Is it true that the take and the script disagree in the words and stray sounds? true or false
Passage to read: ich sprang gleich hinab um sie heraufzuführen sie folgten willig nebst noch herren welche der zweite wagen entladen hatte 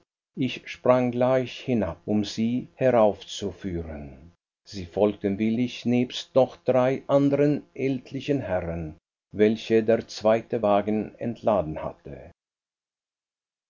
true